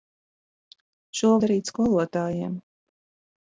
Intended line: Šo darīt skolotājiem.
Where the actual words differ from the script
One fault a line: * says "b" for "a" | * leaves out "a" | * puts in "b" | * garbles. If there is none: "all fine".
all fine